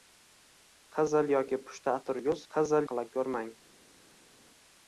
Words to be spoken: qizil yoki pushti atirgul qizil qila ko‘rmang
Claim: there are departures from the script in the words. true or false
false